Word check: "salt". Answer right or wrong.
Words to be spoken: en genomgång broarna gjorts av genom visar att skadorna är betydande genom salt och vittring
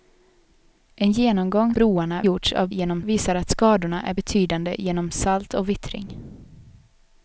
right